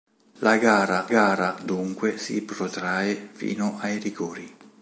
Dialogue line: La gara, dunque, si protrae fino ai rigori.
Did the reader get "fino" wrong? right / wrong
right